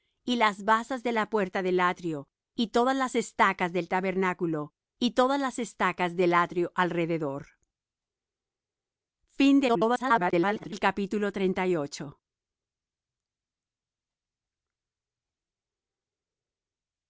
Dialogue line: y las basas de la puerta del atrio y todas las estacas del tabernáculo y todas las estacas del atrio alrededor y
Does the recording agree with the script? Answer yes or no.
no